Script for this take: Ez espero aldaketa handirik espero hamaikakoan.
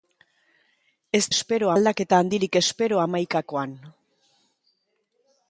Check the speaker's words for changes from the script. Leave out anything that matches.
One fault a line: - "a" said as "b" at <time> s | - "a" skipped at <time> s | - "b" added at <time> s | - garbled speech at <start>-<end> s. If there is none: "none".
none